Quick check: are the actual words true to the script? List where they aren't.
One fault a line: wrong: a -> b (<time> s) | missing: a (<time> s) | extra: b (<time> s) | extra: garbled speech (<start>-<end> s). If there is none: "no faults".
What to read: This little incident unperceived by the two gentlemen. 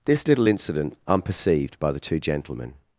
no faults